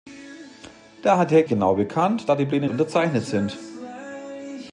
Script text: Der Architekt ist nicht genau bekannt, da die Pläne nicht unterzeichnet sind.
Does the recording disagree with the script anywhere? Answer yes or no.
yes